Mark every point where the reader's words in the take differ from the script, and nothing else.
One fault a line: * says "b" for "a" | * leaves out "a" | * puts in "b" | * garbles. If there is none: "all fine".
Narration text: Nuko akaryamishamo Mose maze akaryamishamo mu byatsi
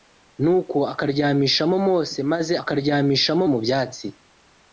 all fine